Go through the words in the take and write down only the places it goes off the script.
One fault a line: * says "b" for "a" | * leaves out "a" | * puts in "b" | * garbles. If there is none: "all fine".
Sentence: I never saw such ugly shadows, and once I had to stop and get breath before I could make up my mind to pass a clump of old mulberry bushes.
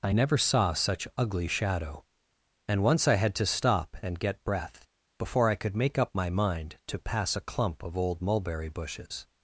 * says "shadow" for "shadows"